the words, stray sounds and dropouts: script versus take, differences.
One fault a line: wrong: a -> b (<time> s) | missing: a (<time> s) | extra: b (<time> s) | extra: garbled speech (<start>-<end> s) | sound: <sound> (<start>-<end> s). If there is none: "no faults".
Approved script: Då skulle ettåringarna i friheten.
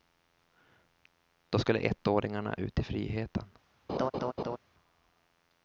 extra: ut (2.6 s)
sound: laugh (3.9-4.6 s)